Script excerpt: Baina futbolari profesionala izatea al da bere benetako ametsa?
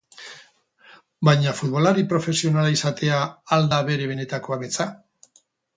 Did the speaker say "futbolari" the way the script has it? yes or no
yes